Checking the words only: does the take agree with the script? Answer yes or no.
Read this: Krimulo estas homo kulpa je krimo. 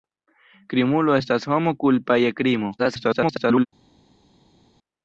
no